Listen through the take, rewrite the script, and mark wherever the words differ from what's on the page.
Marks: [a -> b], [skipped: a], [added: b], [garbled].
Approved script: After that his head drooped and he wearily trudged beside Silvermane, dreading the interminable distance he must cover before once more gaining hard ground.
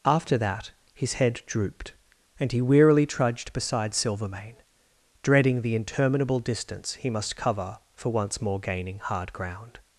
After that his head drooped and he wearily trudged beside Silvermane, dreading the interminable distance he must cover [before -> for] once more gaining hard ground.